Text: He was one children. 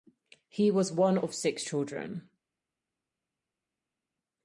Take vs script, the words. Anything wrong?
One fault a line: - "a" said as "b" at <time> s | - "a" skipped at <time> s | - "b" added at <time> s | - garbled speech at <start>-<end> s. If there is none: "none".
- "of six" added at 1.2 s